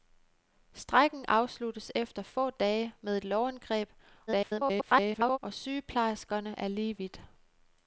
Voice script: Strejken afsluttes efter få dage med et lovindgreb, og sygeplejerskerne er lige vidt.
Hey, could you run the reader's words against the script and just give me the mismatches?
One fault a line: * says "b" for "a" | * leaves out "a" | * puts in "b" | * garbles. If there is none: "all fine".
* garbles